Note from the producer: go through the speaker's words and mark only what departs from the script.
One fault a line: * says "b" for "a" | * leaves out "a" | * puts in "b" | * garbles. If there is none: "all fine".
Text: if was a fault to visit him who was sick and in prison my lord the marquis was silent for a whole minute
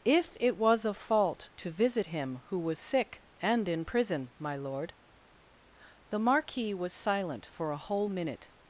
* puts in "it"